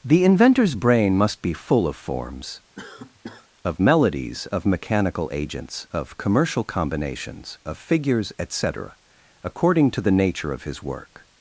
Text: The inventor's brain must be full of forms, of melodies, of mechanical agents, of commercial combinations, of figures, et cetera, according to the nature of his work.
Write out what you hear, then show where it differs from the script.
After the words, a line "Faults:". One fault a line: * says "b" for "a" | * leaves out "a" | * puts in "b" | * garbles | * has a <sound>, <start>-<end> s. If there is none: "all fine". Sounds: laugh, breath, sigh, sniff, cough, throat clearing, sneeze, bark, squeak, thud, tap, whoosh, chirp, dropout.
The inventor's brain must be full of forms, of melodies, of mechanical agents, of commercial combinations, of figures, et cetera, according to the nature of his work.
Faults:
* has a cough, 2.8-3.5 s